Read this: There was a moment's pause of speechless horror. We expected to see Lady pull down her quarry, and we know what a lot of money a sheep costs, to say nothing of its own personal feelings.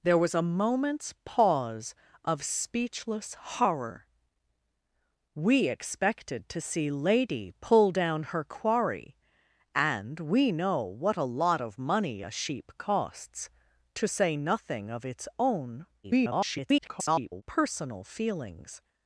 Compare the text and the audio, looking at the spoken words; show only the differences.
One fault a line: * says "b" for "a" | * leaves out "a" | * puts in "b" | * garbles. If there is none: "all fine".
* garbles